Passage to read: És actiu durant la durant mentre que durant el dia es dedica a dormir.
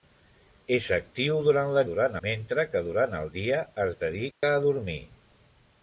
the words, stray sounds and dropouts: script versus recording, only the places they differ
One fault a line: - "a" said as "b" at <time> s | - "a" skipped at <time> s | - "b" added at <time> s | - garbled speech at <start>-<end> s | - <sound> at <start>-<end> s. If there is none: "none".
- dropout at 4.3-4.4 s